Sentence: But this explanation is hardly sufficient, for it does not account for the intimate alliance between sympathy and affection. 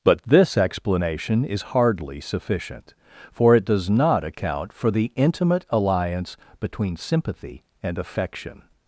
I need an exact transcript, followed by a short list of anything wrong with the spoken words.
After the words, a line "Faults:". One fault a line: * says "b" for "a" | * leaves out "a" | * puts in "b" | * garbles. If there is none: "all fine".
But this explanation is hardly sufficient, for it does not account for the intimate alliance between sympathy and affection.
Faults:
all fine